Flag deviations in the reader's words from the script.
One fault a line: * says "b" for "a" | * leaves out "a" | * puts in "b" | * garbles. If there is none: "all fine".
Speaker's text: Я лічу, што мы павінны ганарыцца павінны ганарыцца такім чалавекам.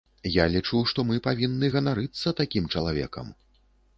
* leaves out "павінны ганарыцца"